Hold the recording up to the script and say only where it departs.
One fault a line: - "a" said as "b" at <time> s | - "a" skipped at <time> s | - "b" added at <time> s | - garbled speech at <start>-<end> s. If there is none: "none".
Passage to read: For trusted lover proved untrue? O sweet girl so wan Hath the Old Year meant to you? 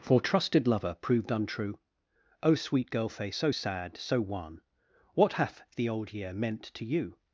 - "face" added at 3.1 s
- "sad so" added at 3.5 s
- "What" added at 5.1 s